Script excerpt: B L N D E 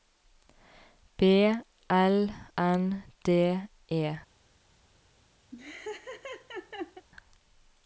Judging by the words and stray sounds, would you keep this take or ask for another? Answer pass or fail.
fail